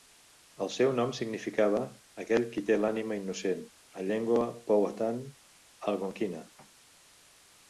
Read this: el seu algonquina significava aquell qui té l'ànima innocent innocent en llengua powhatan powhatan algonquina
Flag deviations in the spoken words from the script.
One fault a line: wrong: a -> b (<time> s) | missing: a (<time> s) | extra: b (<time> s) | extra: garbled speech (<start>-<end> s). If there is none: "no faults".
wrong: algonquina -> nom (1.0 s)
missing: innocent (3.7 s)
missing: powhatan (5.2 s)